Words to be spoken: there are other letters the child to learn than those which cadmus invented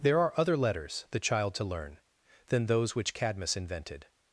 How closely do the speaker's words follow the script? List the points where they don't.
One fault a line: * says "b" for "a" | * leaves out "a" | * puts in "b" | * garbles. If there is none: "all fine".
all fine